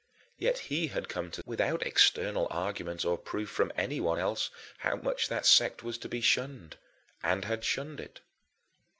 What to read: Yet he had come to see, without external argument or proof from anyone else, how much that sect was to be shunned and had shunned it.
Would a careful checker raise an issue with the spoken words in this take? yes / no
yes